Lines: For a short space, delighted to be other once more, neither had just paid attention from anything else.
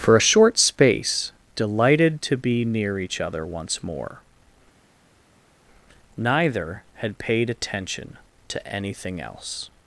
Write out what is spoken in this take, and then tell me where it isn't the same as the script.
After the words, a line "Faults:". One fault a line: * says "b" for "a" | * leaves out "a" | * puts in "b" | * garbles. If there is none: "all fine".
For a short space, delighted to be near each other once more, neither had paid attention to anything else.
Faults:
* puts in "near each"
* leaves out "just"
* says "to" for "from"